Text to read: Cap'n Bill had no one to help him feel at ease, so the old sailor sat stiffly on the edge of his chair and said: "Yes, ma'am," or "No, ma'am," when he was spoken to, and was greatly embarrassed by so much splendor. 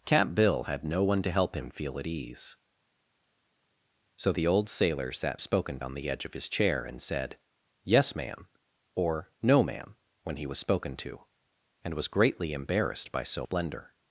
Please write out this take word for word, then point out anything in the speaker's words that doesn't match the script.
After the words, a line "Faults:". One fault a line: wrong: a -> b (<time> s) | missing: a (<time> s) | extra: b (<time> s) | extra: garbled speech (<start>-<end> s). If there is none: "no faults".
Cap'n Bill had no one to help him feel at ease, so the old sailor sat spoken on the edge of his chair and said: "Yes, ma'am," or "No, ma'am," when he was spoken to, and was greatly embarrassed by so splendor.
Faults:
wrong: stiffly -> spoken (5.4 s)
missing: much (13.5 s)